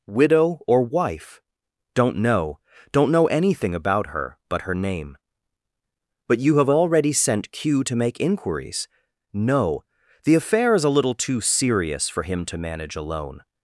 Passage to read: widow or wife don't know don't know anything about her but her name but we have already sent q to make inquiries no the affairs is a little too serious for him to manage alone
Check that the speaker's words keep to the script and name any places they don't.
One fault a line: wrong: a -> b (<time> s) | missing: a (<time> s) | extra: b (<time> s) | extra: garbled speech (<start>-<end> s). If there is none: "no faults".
wrong: we -> you (6.4 s)
wrong: affairs -> affair (10.4 s)